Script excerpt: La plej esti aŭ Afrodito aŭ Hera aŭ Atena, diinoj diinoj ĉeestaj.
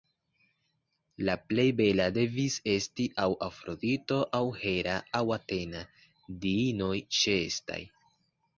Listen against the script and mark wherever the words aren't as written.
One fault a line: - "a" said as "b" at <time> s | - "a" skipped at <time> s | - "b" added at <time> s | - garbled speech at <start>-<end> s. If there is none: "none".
- "bela devis" added at 1.8 s
- "diinoj" skipped at 7.0 s